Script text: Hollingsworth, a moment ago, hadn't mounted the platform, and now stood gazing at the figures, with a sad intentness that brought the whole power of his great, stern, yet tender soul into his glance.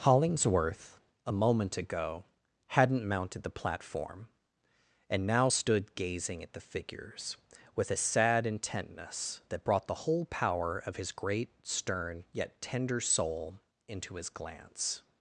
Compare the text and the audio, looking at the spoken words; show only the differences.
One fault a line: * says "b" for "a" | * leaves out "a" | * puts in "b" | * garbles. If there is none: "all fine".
all fine